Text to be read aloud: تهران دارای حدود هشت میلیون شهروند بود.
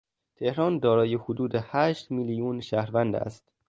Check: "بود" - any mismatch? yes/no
yes